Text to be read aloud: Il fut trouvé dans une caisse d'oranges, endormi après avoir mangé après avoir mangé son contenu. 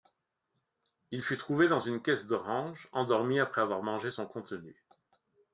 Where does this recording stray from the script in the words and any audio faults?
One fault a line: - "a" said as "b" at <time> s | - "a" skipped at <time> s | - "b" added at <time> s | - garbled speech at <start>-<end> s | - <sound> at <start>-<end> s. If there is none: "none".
- "après avoir mangé" skipped at 4.1 s